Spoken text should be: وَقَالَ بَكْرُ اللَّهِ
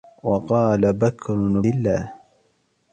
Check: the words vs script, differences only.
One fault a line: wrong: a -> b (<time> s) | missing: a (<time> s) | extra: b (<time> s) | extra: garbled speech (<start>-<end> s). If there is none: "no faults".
no faults